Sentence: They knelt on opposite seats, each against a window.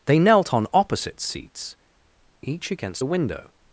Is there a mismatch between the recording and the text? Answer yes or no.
no